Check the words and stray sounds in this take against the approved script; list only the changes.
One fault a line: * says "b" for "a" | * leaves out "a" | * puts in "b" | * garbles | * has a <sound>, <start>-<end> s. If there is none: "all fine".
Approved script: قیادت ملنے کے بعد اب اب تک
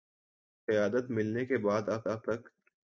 all fine